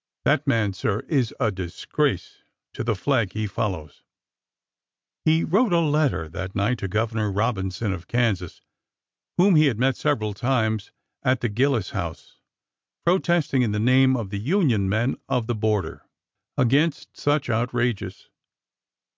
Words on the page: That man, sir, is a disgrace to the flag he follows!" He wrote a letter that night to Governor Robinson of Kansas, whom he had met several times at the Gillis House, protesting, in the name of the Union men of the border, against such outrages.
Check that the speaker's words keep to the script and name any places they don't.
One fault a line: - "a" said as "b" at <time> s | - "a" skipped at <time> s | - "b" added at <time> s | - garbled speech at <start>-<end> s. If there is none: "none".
none